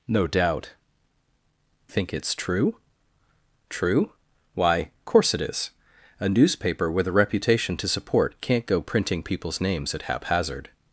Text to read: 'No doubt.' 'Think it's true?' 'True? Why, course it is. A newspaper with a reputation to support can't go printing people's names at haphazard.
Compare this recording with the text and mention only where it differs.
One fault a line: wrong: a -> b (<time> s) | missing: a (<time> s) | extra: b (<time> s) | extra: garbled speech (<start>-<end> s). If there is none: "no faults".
no faults